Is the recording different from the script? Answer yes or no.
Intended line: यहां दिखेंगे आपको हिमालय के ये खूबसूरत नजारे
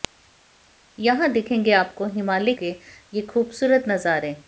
no